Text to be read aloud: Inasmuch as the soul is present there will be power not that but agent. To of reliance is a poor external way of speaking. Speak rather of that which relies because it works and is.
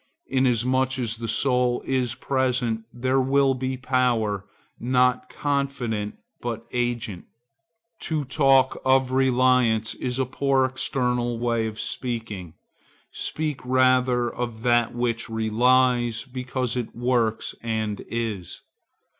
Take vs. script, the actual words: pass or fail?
fail